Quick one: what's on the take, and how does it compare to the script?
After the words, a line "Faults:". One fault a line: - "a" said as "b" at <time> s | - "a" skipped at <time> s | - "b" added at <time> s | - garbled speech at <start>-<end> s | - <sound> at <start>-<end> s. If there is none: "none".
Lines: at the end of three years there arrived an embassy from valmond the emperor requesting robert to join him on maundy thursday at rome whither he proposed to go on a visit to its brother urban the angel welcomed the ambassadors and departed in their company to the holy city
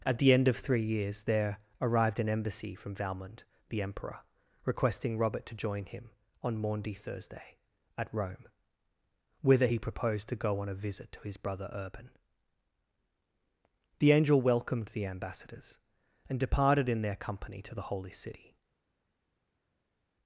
at the end of three years there arrived an embassy from valmond the emperor requesting robert to join him on maundy thursday at rome whither he proposed to go on a visit to his brother urban the angel welcomed the ambassadors and departed in their company to the holy city
Faults:
- "its" said as "his" at 11.2 s